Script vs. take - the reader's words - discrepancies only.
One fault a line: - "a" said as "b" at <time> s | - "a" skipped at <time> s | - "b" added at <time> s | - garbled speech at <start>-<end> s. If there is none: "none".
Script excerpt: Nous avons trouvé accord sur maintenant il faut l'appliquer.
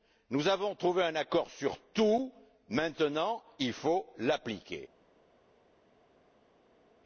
- "un" added at 1.0 s
- "tout" added at 1.9 s